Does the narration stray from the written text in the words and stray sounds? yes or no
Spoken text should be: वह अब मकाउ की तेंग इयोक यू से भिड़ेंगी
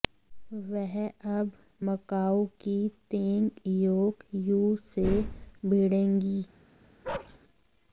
yes